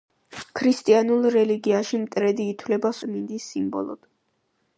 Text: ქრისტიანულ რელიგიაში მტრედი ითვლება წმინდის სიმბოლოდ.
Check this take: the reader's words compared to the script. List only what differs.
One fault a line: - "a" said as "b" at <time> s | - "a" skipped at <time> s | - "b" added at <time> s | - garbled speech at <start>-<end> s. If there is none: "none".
none